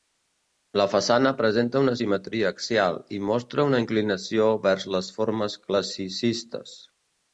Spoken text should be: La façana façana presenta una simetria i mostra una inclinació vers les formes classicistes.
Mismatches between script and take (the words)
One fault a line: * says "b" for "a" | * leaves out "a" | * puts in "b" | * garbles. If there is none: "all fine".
* leaves out "façana"
* puts in "axial"